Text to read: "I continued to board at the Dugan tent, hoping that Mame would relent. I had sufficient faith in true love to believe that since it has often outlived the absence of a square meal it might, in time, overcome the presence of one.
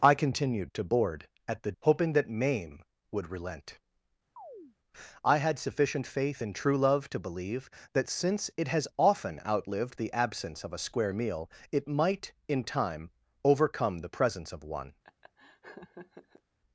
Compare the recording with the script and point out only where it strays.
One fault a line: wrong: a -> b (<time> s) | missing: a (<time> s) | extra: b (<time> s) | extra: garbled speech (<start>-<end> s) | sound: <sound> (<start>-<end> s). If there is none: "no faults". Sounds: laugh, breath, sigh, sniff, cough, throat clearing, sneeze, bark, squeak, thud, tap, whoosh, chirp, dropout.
missing: Dugan tent (1.7 s)
sound: chirp (4.4-4.8 s)
sound: laugh (15.0-16.4 s)